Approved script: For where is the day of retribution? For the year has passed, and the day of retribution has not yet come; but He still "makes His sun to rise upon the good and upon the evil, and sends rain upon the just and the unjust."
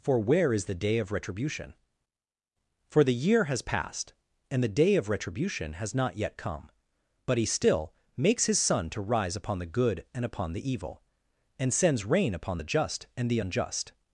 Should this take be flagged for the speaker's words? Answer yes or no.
no